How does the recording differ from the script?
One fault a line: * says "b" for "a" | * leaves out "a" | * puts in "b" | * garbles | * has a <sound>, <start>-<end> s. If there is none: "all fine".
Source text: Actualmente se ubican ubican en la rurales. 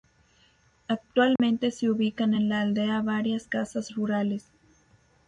* has a dropout, 1.4-1.4 s
* leaves out "ubican"
* puts in "aldea varias casas"